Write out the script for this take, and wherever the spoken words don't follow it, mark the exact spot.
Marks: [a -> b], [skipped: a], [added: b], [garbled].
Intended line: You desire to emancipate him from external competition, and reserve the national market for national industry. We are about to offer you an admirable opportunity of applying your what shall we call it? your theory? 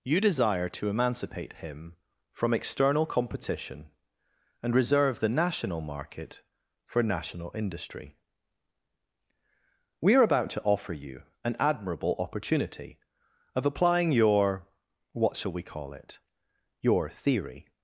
You desire to emancipate him from external competition, and reserve the national market for national industry. We are about to offer you an admirable opportunity of applying your what shall we call it? your theory?